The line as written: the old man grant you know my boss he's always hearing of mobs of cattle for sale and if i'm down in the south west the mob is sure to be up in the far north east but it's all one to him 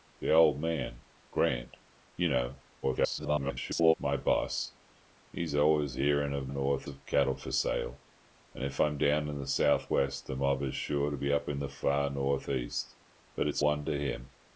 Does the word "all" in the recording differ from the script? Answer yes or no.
yes